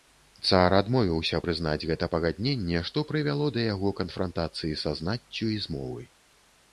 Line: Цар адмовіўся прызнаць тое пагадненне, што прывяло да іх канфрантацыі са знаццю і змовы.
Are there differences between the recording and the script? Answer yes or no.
yes